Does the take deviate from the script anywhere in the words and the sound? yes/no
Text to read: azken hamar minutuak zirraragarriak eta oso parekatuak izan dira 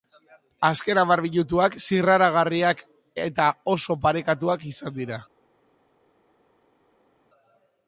no